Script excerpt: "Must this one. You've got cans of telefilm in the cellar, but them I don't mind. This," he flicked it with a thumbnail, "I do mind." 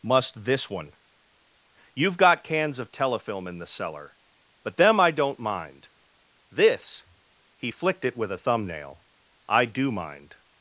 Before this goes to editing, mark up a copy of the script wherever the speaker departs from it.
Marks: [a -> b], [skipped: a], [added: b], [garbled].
"Must this one. You've got cans of telefilm in the cellar, but them I don't mind. This," he flicked it with a thumbnail, "I do mind."